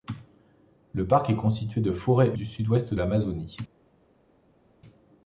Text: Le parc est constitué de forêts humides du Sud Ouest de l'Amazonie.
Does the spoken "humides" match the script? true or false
false